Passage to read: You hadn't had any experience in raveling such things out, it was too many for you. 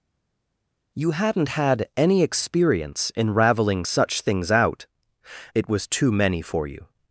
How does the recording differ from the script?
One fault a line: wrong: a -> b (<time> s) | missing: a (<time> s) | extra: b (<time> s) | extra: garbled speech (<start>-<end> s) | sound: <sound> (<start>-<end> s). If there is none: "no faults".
no faults